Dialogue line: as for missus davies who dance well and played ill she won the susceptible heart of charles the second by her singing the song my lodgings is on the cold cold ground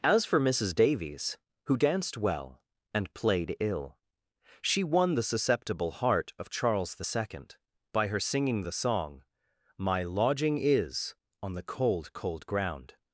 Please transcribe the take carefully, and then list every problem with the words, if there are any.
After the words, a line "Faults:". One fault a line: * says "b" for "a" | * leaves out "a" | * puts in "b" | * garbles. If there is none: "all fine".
as for missus davies who danced well and played ill she won the susceptible heart of charles the second by her singing the song my lodging is on the cold cold ground
Faults:
* says "danced" for "dance"
* says "lodging" for "lodgings"